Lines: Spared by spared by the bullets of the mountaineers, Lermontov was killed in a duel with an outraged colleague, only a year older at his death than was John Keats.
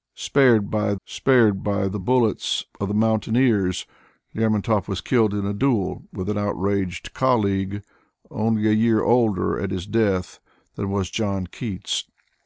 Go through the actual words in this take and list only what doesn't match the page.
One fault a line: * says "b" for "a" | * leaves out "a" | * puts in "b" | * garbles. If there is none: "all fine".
all fine